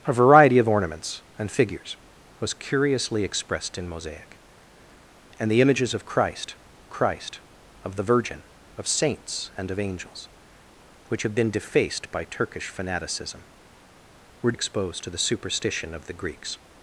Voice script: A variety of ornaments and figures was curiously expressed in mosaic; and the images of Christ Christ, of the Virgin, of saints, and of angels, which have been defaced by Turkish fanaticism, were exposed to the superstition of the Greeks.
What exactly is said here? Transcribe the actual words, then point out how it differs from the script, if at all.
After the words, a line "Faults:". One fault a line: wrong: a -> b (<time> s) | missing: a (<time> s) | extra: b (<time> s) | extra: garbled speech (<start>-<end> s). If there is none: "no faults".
A variety of ornaments and figures was curiously expressed in mosaic; and the images of Christ Christ, of the Virgin, of saints, and of angels, which have been defaced by Turkish fanaticism, were exposed to the superstition of the Greeks.
Faults:
no faults